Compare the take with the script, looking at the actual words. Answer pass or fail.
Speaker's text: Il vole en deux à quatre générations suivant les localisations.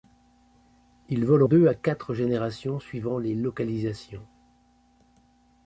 fail